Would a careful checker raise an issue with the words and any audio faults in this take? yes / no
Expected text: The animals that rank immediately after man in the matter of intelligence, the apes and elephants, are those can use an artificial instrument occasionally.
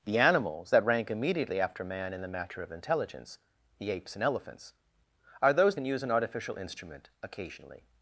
no